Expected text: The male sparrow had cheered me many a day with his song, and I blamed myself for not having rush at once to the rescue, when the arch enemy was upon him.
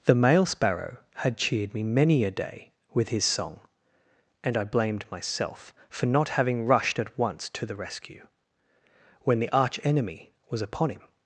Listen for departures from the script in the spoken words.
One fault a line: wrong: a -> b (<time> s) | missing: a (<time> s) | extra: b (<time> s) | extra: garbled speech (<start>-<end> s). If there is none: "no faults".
wrong: rush -> rushed (6.7 s)